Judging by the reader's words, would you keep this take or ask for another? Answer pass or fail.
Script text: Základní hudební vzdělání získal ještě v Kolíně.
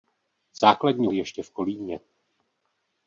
fail